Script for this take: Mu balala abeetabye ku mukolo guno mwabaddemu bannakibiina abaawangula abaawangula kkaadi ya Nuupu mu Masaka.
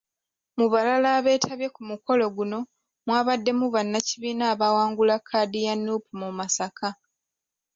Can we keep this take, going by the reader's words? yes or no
no